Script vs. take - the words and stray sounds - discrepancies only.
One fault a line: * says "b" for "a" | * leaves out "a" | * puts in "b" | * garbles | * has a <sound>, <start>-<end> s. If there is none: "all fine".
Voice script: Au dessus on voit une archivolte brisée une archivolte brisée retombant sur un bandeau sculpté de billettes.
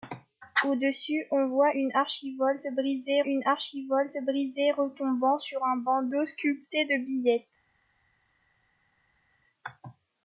all fine